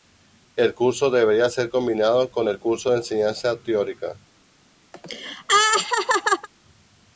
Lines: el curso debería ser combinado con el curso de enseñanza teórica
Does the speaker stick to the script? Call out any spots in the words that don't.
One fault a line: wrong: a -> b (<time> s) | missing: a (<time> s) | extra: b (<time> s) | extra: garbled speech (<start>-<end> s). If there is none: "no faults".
no faults